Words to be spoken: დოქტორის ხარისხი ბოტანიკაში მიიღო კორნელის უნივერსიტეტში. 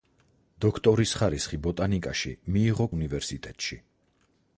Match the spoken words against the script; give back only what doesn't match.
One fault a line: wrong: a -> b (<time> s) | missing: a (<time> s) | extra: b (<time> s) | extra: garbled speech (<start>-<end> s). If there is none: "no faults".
missing: კორნელის (2.9 s)